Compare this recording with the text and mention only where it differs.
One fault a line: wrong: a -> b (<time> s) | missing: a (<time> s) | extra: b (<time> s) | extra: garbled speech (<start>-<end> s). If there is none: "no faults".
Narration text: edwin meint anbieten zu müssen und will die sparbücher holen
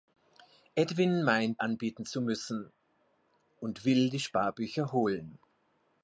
no faults